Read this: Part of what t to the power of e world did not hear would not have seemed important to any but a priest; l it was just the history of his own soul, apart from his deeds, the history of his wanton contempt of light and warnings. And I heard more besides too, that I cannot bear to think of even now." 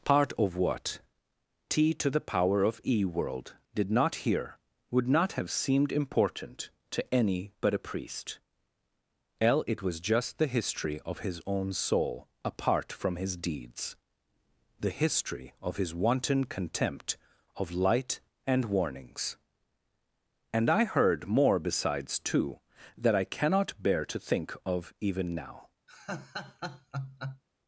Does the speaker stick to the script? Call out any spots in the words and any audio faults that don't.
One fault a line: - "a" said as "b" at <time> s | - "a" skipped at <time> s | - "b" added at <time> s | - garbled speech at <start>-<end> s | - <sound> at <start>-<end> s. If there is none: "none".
- laugh at 25.9-27.4 s